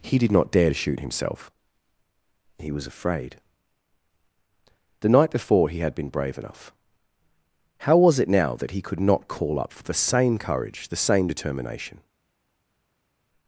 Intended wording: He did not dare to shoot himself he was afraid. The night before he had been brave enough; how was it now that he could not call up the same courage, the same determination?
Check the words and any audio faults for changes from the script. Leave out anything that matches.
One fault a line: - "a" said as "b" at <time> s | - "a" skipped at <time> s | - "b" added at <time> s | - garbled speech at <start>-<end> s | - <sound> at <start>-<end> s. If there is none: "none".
- "for" added at 9.7 s